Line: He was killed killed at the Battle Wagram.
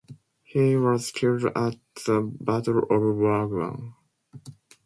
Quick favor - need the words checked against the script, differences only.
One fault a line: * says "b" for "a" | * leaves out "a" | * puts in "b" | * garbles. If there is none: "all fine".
* leaves out "killed"
* puts in "of"